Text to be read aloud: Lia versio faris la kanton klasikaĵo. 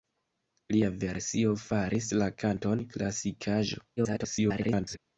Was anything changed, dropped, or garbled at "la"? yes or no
no